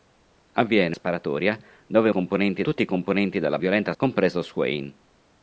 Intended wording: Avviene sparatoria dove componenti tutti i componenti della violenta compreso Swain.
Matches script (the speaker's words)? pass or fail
pass